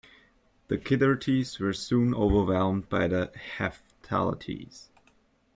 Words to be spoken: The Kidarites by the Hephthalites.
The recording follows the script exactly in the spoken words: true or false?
false